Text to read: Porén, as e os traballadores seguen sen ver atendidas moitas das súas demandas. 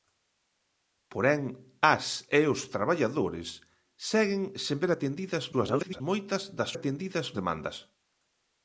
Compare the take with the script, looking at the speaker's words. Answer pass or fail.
fail